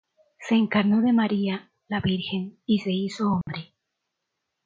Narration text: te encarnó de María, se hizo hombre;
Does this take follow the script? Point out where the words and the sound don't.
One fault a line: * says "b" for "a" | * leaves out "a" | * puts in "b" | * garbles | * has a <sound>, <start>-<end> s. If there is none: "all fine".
* says "se" for "te"
* puts in "la Virgen y"
* has a dropout, 3.4-3.5 s